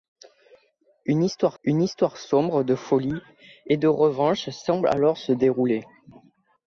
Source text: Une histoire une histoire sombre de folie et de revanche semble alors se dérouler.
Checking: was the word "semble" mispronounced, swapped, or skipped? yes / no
no